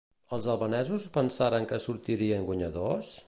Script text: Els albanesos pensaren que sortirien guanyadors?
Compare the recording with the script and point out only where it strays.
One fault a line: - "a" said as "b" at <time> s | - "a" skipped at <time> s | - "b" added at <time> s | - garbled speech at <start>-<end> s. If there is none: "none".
none